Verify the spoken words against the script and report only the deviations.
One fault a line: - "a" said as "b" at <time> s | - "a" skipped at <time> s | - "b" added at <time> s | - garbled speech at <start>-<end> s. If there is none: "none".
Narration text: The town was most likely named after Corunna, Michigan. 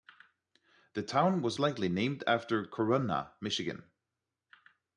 - "most" skipped at 1.6 s